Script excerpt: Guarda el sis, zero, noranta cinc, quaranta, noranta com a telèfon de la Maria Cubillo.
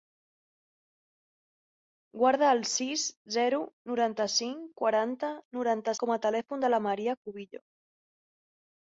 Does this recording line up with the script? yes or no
yes